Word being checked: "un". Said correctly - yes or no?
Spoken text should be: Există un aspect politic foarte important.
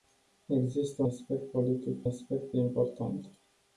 no